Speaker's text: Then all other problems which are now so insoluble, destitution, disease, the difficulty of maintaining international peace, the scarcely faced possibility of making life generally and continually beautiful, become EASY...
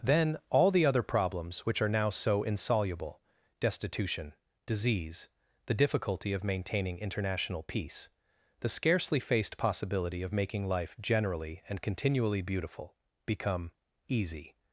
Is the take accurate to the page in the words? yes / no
no